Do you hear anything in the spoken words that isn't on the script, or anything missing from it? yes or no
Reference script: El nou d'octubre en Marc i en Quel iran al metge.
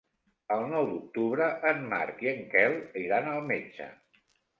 no